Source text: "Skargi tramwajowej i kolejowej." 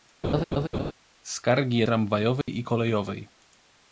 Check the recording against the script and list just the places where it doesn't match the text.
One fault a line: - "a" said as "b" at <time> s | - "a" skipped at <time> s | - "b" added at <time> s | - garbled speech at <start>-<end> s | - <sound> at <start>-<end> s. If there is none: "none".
- laugh at 0.2-0.9 s
- dropout at 2.4-2.5 s